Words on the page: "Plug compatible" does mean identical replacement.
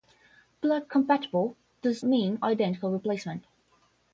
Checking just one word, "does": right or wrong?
right